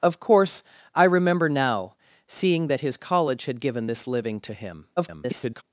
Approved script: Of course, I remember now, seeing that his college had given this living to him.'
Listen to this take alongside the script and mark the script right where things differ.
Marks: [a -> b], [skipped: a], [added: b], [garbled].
Of course, I remember now, seeing that his college had given this living to him.' [garbled]